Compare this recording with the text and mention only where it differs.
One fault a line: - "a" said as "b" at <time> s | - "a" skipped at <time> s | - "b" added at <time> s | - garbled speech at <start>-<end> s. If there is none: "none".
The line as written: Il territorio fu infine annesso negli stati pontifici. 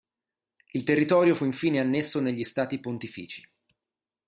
none